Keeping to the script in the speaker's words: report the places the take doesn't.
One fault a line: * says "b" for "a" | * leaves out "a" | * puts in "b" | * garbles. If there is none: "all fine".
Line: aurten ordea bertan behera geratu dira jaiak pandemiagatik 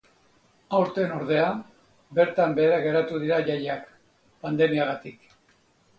all fine